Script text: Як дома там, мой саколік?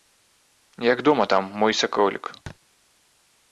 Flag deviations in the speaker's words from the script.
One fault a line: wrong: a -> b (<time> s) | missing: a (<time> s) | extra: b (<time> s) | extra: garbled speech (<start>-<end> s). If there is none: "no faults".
no faults